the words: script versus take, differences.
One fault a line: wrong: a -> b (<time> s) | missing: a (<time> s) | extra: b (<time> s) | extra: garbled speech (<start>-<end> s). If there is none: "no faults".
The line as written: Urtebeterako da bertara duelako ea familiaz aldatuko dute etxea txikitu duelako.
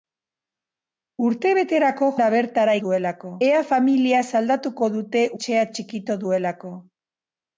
no faults